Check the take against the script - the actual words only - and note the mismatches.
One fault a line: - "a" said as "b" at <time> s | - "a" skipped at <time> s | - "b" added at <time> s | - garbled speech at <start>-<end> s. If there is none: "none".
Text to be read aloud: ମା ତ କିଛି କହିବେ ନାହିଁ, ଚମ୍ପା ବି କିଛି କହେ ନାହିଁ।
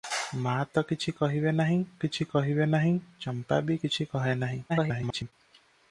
- "କିଛି କହିବେ ନାହିଁ" added at 2.0 s
- garbled speech at 4.7-5.3 s